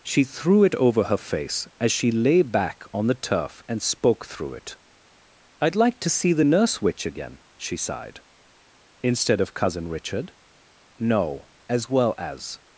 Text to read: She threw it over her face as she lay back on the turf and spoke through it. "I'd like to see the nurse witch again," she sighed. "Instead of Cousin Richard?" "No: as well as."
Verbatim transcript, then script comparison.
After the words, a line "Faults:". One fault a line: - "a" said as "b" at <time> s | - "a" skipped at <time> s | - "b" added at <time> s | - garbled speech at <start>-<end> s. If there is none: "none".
She threw it over her face as she lay back on the turf and spoke through it. "I'd like to see the nurse witch again," she sighed. "Instead of Cousin Richard?" "No: as well as."
Faults:
none